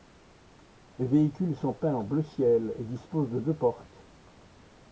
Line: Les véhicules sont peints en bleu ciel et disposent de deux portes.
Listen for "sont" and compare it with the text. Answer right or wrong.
right